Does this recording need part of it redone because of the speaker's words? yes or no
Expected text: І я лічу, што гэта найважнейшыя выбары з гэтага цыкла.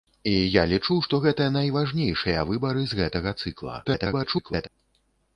yes